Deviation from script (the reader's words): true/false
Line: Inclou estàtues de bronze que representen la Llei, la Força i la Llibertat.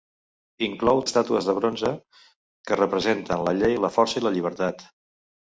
false